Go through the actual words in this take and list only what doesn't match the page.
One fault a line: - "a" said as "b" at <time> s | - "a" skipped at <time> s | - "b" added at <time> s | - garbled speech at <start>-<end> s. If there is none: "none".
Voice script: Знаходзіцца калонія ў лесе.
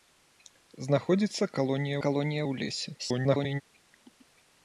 - "калонія" added at 2.1 s
- garbled speech at 3.0-3.6 s